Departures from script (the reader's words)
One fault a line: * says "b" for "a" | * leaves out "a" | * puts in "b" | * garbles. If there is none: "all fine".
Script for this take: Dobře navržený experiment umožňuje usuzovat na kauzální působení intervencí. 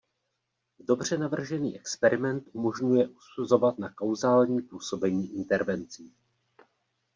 all fine